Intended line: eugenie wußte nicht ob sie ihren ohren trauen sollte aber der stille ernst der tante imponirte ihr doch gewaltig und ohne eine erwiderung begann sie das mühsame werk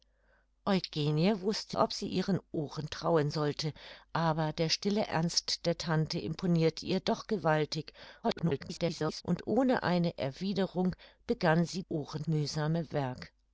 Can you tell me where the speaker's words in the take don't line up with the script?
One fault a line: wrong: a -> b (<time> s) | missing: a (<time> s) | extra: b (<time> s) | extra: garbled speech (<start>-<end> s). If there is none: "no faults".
missing: nicht (1.8 s)
extra: garbled speech (8.2-9.2 s)
wrong: das -> ohren (11.9 s)